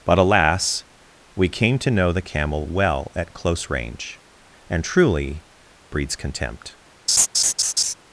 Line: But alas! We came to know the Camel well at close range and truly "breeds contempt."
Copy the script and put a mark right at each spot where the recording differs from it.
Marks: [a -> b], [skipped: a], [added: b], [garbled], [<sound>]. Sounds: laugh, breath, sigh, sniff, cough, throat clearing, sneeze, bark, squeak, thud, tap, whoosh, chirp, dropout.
But alas! We came to know the Camel well at close range and truly "breeds contempt." [laugh]